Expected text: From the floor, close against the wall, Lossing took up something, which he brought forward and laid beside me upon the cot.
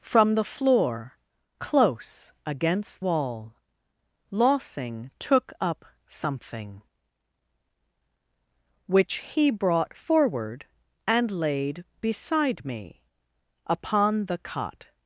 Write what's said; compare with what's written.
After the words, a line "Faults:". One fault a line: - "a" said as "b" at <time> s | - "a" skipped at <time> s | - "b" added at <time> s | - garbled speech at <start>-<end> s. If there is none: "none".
From the floor, close against wall, Lossing took up something, which he brought forward and laid beside me upon the cot.
Faults:
- "the" skipped at 3.0 s